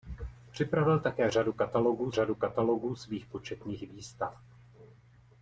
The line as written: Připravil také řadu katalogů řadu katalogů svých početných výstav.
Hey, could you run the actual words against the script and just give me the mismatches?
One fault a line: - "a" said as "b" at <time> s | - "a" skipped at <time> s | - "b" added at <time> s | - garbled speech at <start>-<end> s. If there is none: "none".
none